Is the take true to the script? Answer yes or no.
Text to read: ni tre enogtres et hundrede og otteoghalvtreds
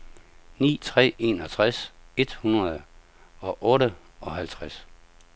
yes